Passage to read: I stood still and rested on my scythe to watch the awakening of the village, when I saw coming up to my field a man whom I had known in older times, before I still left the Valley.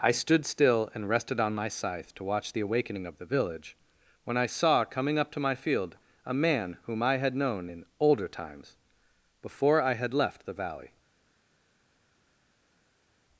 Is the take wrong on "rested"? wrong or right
right